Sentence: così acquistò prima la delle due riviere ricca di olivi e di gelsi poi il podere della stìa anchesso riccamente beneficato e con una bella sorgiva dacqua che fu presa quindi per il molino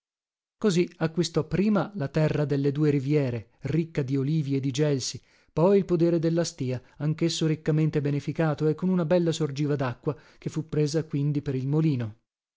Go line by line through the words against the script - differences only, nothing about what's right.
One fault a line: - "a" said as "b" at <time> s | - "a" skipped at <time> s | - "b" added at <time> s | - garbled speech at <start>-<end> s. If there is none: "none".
- "terra" added at 2.1 s